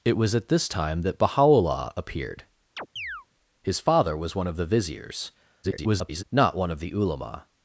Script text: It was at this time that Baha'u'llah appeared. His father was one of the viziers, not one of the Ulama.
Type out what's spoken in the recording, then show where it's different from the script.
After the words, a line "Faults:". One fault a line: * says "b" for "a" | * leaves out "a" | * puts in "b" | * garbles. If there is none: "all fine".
It was at this time that Baha'u'llah appeared. His father was one of the viziers, [garbled] not one of the Ulama.
Faults:
* garbles